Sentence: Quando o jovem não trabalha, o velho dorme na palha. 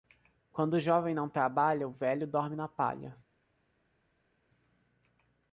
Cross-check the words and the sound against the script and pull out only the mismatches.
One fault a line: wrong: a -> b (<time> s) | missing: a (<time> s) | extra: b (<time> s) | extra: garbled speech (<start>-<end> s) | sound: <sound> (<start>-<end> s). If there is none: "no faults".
no faults